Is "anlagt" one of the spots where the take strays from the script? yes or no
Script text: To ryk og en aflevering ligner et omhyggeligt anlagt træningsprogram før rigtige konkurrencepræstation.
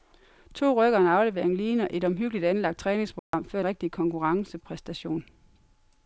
no